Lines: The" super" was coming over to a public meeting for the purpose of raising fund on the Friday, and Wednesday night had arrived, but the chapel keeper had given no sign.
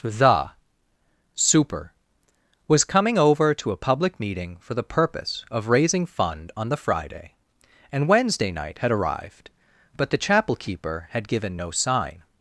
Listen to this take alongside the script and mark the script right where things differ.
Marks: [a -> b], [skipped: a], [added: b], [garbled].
The" super" was coming over to a public meeting for the purpose of raising fund on the Friday, and Wednesday night had arrived, but the chapel keeper had given no sign.